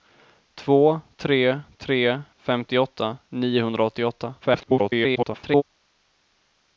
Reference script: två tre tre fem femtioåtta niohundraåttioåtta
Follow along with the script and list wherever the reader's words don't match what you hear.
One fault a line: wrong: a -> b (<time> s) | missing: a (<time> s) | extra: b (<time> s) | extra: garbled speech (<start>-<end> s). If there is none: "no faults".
missing: fem (2.2 s)
extra: garbled speech (4.4-5.6 s)